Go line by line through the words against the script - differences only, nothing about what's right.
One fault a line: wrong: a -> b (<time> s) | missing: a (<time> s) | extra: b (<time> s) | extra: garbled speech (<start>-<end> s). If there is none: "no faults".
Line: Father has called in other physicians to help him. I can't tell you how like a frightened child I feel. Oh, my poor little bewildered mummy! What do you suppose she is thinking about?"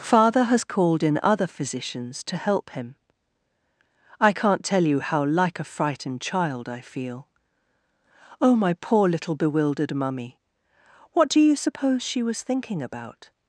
wrong: is -> was (12.2 s)